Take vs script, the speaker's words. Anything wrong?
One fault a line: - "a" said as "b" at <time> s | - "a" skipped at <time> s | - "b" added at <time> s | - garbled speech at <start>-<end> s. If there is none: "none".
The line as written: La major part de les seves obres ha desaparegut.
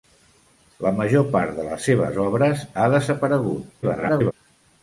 - garbled speech at 3.8-4.3 s